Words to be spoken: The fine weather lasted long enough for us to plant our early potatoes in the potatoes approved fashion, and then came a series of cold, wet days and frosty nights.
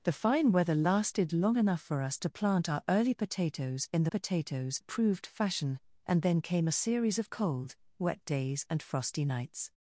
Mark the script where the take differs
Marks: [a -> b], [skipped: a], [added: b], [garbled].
The fine weather lasted long enough for us to plant our early potatoes in the potatoes approved fashion, and then came a series of cold, wet days and frosty nights.